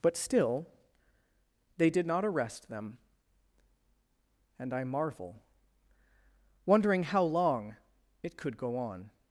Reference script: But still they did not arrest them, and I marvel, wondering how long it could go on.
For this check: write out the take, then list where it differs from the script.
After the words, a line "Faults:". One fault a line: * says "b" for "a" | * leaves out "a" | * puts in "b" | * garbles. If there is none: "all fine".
But still they did not arrest them, and I marvel, wondering how long it could go on.
Faults:
all fine